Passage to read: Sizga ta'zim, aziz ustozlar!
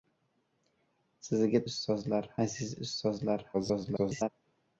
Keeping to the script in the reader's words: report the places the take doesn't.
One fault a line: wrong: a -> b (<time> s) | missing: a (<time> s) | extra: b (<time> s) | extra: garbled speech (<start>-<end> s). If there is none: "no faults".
wrong: ta'zim -> ustozlar (1.7 s)
extra: garbled speech (3.5-4.3 s)